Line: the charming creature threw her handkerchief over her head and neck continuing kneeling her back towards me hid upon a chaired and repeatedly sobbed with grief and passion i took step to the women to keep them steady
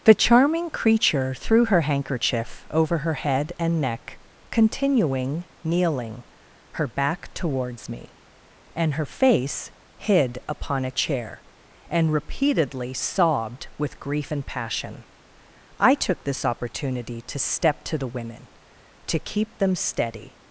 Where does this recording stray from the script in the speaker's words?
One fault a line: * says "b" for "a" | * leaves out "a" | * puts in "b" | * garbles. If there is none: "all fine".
* puts in "and her face"
* says "chair" for "chaired"
* puts in "this opportunity to"